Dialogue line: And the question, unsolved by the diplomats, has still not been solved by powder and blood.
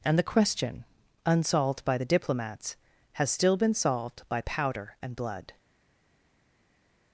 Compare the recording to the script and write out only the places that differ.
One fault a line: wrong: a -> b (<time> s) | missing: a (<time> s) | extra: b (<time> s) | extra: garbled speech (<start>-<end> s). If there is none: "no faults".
missing: not (3.6 s)